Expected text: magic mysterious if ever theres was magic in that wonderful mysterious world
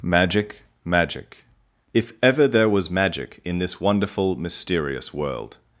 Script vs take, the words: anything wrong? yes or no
yes